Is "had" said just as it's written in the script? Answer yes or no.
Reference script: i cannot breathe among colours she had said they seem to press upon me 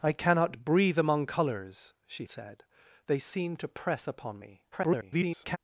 no